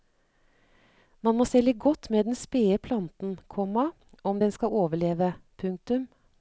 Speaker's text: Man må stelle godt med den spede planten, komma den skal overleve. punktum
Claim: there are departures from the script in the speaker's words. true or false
true